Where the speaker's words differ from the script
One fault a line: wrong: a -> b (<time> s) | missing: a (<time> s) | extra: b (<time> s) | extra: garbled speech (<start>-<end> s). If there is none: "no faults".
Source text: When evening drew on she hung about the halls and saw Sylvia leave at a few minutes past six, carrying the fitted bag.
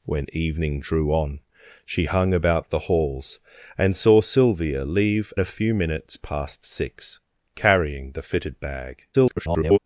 missing: at (5.3 s)
extra: garbled speech (9.1-9.8 s)